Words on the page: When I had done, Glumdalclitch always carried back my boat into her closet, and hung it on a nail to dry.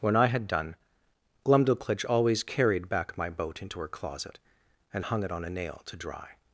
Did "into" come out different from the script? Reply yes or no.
no